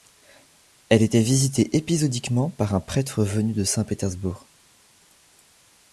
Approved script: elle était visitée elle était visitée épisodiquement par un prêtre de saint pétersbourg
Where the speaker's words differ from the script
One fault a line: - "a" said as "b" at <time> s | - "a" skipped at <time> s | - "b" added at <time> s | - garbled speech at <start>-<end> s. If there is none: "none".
- "elle était visitée" skipped at 1.8 s
- "venu" added at 3.2 s